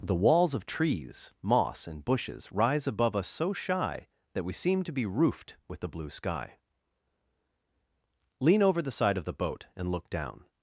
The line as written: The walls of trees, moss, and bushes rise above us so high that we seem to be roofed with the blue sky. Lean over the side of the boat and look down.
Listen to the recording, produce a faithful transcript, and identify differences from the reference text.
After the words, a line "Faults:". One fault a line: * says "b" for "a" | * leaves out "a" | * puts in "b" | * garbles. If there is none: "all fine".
The walls of trees, moss, and bushes rise above us so shy that we seem to be roofed with the blue sky. Lean over the side of the boat and look down.
Faults:
* says "shy" for "high"